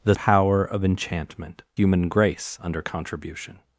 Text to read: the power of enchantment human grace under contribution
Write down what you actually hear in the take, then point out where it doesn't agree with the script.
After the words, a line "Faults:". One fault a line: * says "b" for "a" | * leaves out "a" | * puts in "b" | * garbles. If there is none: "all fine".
the power of enchantment human grace under contribution
Faults:
all fine